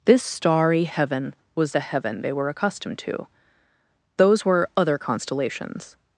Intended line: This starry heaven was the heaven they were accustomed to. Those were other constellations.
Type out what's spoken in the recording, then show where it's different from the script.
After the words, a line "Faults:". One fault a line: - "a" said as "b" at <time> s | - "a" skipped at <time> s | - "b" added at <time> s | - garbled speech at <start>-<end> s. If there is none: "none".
This starry heaven was the heaven they were accustomed to. Those were other constellations.
Faults:
none